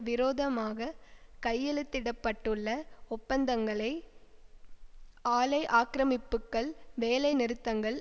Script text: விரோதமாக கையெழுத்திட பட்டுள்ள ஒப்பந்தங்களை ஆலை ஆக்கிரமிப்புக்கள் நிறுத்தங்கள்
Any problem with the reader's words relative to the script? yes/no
yes